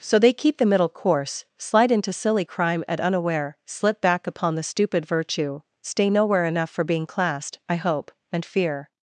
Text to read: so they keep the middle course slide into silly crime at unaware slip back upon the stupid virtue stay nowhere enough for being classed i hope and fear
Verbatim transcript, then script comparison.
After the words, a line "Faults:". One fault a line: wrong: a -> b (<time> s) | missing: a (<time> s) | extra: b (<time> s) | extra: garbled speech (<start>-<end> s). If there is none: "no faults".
so they keep the middle course slide into silly crime at unaware slip back upon the stupid virtue stay nowhere enough for being classed i hope and fear
Faults:
no faults